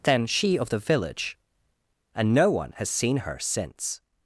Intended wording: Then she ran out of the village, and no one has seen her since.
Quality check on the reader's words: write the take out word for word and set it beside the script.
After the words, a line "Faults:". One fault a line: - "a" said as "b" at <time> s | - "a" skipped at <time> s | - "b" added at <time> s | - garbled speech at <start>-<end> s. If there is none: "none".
Then she of the village, and no one has seen her since.
Faults:
- "ran out" skipped at 0.6 s